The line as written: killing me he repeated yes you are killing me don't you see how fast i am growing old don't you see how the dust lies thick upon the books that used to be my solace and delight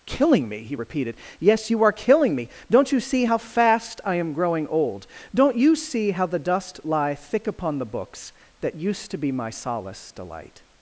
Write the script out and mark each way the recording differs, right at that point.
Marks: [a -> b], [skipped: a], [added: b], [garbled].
killing me he repeated yes you are killing me don't you see how fast i am growing old don't you see how the dust [lies -> lie] thick upon the books that used to be my solace [skipped: and] delight